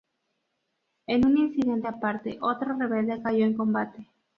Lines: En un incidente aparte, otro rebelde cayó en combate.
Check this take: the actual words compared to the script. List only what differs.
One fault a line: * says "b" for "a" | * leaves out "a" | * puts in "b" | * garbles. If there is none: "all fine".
all fine